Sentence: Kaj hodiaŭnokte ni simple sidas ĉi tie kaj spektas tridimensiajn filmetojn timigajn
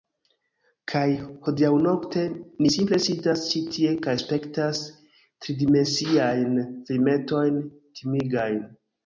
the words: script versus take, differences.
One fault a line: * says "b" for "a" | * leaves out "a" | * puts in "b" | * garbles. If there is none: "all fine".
all fine